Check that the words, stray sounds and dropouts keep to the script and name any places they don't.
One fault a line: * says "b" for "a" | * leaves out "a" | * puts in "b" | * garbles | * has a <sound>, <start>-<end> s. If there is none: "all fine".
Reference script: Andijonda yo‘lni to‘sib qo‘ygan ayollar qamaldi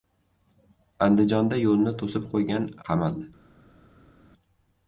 * leaves out "ayollar"